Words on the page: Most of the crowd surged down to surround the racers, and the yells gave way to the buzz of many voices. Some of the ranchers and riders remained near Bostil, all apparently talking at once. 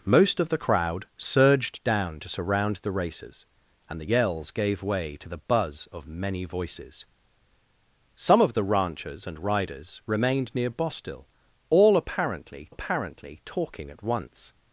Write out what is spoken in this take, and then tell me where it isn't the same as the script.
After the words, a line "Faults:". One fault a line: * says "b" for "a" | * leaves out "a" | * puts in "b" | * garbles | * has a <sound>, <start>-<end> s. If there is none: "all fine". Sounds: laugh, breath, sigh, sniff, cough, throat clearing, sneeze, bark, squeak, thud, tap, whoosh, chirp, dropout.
Most of the crowd surged down to surround the racers, and the yells gave way to the buzz of many voices. Some of the ranchers and riders remained near Bostil, all apparently apparently talking at once.
Faults:
* puts in "apparently"